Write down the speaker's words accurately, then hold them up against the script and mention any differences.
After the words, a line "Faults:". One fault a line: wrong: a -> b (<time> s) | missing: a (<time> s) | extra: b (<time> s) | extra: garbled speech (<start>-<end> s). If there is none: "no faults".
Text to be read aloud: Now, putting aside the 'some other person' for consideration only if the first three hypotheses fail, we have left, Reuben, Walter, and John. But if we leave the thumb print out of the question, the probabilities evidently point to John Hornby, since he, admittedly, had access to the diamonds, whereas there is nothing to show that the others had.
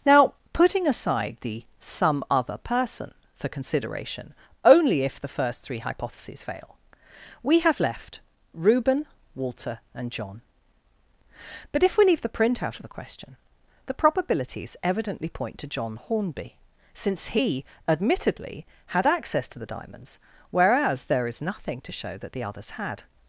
Now, putting aside the 'some other person' for consideration only if the first three hypotheses fail, we have left, Reuben, Walter, and John. But if we leave the print out of the question, the probabilities evidently point to John Hornby, since he, admittedly, had access to the diamonds, whereas there is nothing to show that the others had.
Faults:
missing: thumb (12.3 s)